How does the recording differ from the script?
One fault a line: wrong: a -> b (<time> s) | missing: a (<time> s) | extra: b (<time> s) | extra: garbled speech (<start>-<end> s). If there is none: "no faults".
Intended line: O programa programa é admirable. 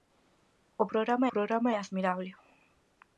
no faults